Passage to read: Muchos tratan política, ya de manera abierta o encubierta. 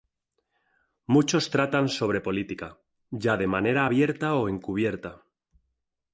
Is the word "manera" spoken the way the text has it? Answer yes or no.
yes